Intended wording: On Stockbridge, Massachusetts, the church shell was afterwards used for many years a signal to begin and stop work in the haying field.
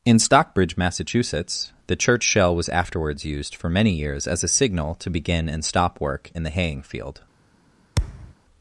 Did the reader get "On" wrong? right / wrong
wrong